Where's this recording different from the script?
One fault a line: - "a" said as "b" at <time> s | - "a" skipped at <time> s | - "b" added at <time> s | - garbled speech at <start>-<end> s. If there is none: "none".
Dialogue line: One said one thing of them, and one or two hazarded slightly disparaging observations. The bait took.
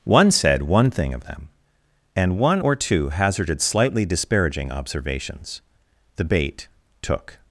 none